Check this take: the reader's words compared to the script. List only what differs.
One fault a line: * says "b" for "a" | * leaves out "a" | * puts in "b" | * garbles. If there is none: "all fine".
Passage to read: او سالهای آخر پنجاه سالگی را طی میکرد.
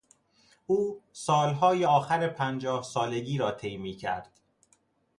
all fine